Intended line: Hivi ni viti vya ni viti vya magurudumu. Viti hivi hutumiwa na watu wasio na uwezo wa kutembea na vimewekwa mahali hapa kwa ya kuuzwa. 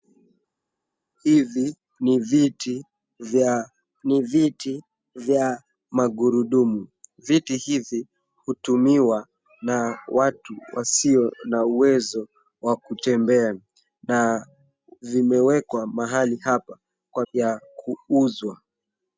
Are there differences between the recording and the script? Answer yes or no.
no